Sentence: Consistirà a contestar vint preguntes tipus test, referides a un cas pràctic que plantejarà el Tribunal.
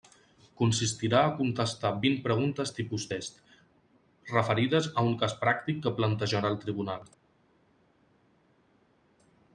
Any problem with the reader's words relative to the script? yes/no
no